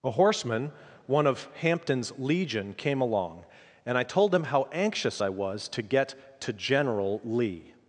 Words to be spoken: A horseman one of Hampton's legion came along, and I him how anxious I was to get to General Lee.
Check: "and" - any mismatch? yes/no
no